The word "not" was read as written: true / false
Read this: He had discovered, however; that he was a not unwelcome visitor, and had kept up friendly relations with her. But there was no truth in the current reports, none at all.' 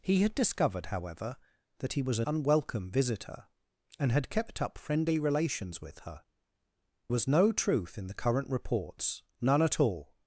false